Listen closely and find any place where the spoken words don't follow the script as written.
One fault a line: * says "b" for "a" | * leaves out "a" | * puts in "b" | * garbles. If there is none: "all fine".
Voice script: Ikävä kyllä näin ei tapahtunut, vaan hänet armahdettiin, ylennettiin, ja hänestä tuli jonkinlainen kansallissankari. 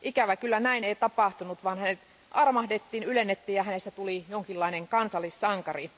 all fine